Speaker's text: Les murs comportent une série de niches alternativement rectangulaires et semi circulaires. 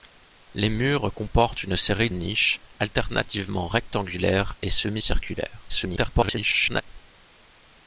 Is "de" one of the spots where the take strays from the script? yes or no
yes